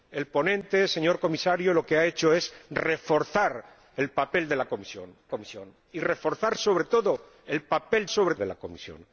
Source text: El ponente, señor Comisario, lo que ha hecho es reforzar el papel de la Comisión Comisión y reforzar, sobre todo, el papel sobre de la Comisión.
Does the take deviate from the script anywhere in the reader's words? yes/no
no